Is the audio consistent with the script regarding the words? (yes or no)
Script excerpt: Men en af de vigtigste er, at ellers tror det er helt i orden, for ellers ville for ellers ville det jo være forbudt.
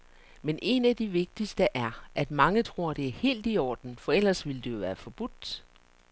no